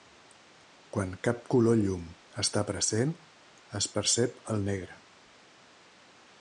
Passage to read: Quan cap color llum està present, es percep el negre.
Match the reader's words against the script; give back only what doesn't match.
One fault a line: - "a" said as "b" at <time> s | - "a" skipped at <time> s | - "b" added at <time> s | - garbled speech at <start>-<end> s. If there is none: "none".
none